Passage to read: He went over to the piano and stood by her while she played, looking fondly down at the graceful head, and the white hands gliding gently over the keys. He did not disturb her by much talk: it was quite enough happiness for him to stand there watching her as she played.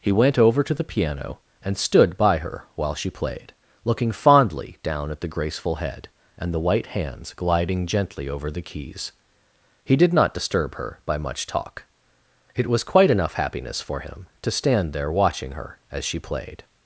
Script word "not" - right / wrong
right